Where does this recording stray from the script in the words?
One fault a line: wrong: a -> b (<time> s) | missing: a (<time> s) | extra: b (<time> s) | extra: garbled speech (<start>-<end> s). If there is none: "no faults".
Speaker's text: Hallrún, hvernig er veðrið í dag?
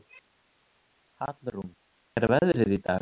missing: hvernig (1.7 s)